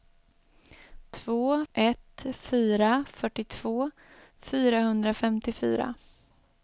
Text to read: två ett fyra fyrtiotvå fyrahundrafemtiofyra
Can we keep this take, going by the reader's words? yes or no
yes